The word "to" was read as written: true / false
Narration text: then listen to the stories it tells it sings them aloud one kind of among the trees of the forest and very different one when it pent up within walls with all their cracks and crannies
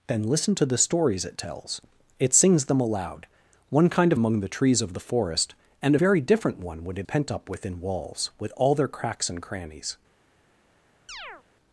true